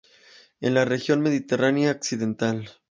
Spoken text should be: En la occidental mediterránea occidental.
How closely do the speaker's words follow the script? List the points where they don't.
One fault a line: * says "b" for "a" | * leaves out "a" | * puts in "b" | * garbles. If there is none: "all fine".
* says "región" for "occidental"